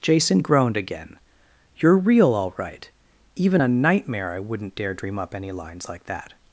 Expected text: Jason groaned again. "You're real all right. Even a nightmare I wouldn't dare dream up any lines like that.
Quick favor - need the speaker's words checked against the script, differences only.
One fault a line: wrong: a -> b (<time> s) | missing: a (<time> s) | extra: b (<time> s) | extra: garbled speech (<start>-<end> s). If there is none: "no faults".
no faults